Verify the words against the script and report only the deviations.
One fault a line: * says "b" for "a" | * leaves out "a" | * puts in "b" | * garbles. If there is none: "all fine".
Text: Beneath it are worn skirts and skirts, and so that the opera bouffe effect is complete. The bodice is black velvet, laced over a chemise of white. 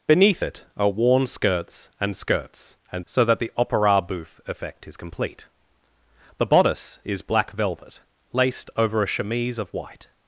all fine